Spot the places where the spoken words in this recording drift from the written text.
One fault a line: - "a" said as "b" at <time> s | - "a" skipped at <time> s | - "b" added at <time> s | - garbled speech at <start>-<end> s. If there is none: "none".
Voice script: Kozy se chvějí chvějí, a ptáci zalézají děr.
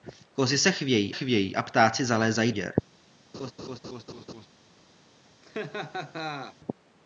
none